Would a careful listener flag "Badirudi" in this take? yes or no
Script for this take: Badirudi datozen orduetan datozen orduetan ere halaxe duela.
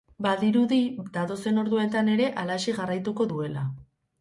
no